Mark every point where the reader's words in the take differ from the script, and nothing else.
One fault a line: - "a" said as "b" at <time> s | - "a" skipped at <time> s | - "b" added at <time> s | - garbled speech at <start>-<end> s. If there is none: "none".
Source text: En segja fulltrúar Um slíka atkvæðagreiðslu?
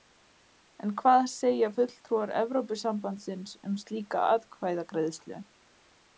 - "hvað" added at 1.0 s
- "Evrópusambandsins" added at 2.4 s